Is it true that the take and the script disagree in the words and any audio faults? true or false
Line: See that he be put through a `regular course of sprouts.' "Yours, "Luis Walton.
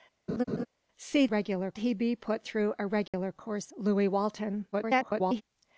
true